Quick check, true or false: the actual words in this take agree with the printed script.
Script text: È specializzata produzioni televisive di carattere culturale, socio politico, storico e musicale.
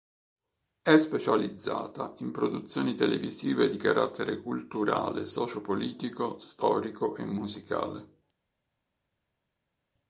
false